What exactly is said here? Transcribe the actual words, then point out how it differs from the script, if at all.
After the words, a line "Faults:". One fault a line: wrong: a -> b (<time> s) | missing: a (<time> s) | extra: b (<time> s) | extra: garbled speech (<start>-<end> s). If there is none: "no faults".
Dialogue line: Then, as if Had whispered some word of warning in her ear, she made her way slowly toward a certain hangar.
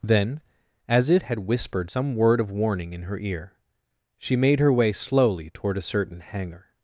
Then, as if Had whispered some word of warning in her ear, she made her way slowly toward a certain hangar.
Faults:
no faults